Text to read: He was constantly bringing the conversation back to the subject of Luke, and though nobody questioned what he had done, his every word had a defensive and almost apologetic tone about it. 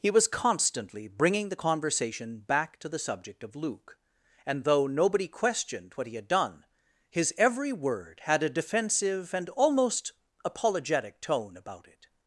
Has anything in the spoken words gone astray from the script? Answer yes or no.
no